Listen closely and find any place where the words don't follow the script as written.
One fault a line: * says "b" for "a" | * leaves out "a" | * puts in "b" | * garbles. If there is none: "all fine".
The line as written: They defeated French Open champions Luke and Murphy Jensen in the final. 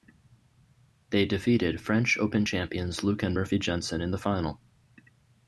all fine